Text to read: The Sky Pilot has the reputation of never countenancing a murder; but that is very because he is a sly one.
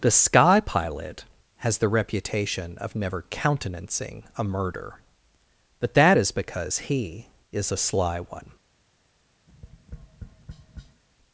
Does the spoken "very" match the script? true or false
false